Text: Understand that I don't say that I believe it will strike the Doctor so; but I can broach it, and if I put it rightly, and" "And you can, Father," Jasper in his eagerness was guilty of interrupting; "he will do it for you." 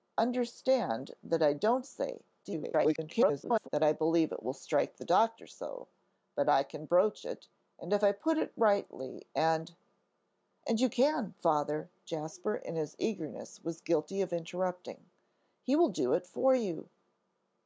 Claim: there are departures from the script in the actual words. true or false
true